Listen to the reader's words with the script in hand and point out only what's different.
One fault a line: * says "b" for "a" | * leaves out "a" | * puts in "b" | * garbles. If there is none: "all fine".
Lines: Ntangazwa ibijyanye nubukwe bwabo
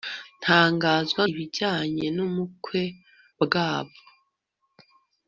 all fine